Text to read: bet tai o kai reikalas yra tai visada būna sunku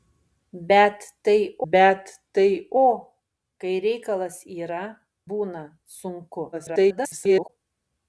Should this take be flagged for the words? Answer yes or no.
yes